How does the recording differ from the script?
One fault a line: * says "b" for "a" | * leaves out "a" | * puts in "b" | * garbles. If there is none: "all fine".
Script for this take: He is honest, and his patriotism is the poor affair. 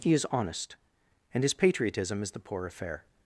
all fine